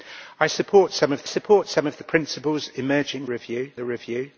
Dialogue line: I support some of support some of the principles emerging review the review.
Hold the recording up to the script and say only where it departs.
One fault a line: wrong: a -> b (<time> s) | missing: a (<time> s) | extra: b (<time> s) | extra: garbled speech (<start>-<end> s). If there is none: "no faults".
no faults